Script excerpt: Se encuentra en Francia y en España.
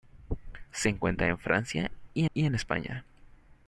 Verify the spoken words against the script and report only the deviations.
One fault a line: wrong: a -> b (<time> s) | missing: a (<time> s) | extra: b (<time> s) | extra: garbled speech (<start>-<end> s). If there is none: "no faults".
extra: y (2.3 s)